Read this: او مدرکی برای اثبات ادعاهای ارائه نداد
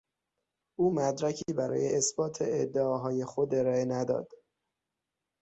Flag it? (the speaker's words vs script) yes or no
yes